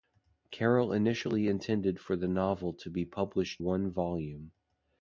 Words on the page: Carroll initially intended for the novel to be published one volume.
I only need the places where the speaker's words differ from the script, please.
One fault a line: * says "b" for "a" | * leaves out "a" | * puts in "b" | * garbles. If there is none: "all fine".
all fine